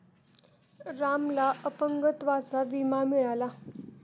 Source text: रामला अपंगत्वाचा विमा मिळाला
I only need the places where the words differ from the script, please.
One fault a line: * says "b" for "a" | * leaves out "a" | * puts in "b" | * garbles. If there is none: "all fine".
all fine